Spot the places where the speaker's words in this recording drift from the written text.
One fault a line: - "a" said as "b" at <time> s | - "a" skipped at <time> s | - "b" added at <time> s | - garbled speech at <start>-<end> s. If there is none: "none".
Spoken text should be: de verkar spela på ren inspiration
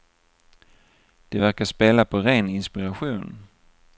none